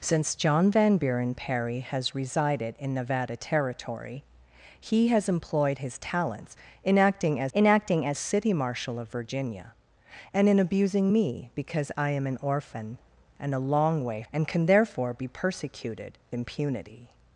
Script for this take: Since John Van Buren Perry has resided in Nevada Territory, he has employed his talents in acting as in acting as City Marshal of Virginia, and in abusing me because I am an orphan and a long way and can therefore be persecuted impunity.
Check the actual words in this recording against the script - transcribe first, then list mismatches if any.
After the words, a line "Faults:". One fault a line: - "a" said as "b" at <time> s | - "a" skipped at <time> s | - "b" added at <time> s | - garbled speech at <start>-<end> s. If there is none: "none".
Since John Van Buren Perry has resided in Nevada Territory, he has employed his talents in acting as in acting as City Marshal of Virginia, and in abusing me because I am an orphan and a long way and can therefore be persecuted impunity.
Faults:
none